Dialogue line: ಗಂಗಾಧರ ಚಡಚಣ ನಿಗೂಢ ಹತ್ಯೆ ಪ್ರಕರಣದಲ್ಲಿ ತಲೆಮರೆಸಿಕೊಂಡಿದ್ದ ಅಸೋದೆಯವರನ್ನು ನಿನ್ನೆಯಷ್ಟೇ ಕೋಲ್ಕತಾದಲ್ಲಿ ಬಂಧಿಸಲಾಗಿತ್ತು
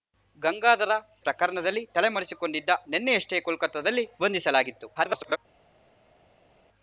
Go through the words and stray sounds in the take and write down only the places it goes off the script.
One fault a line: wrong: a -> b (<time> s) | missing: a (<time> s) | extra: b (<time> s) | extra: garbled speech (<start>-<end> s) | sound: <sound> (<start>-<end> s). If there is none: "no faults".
missing: ಚಡಚಣ ನಿಗೂಢ ಹತ್ಯೆ (0.9 s)
missing: ಅಸೋದೆಯವರನ್ನು (2.7 s)
extra: garbled speech (5.0-5.4 s)